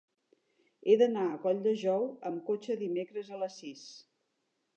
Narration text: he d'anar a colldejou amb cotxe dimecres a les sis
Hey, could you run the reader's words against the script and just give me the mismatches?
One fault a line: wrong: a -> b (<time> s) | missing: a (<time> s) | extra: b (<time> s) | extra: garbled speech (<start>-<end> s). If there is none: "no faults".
no faults